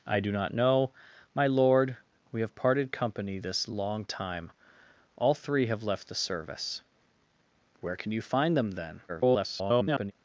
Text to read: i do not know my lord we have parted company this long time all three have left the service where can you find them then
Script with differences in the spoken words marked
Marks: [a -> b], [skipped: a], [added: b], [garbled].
i do not know my lord we have parted company this long time all three have left the service where can you find them then [garbled]